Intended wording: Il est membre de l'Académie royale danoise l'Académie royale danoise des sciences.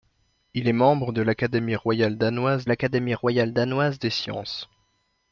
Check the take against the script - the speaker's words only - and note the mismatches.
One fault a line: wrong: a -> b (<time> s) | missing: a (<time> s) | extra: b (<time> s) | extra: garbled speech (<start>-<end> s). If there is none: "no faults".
no faults